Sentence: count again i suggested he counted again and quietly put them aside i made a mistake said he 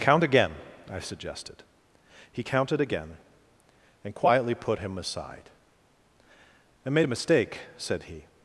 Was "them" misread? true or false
true